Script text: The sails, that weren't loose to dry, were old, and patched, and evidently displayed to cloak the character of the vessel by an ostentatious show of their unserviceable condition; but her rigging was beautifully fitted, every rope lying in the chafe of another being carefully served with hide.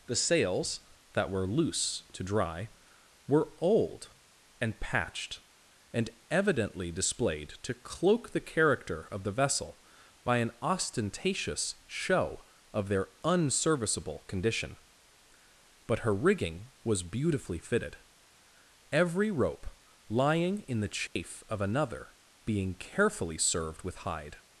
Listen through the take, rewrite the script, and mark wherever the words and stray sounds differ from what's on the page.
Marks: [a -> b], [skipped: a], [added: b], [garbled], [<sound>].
The sails, that [weren't -> were] loose to dry, were old, and patched, and evidently displayed to cloak the character of the vessel by an ostentatious show of their unserviceable condition; but her rigging was beautifully fitted, every rope lying in the chafe [dropout] of another being carefully served with hide.